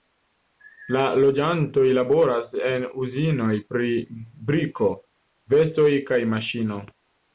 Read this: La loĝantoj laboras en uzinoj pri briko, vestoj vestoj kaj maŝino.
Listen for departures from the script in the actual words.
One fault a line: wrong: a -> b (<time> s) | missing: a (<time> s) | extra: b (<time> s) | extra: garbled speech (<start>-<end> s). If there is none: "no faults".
missing: vestoj (5.9 s)